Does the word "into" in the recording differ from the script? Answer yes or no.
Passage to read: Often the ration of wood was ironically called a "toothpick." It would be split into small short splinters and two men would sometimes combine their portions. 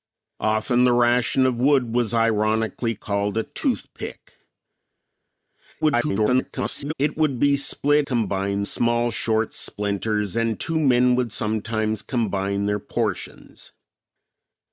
yes